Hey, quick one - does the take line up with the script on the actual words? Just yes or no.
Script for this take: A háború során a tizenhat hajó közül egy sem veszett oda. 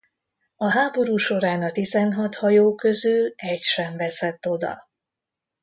yes